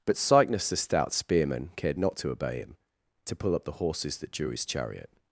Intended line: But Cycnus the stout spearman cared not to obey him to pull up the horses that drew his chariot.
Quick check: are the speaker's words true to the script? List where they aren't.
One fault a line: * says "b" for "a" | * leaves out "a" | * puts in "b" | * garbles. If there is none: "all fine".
all fine